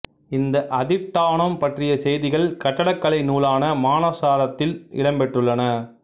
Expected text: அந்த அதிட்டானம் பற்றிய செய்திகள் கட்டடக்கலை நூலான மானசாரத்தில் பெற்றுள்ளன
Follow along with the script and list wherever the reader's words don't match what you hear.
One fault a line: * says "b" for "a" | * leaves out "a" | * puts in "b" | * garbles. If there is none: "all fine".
* says "இந்த" for "அந்த"
* puts in "இடம்"